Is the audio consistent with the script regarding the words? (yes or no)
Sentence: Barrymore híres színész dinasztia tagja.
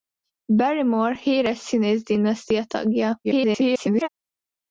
no